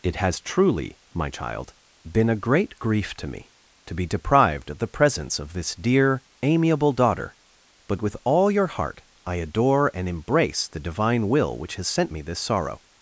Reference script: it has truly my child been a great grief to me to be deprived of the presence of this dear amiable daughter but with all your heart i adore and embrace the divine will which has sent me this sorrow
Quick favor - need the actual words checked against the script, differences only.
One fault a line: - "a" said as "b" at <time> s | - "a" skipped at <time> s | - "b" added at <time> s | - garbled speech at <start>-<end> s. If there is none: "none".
none